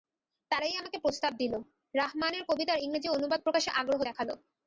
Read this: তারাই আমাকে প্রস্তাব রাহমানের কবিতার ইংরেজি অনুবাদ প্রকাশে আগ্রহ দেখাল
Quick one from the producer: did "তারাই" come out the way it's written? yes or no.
yes